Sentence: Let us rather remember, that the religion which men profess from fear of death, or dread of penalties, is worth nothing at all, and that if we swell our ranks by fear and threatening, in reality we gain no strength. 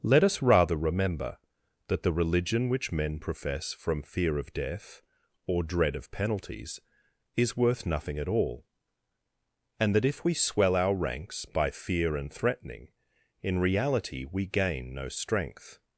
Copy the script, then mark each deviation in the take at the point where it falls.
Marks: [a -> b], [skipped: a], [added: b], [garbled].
Let us rather remember, that the religion which men profess from fear of death, or dread of penalties, is worth nothing at all, and that if we swell our ranks by fear and threatening, in reality we gain no strength.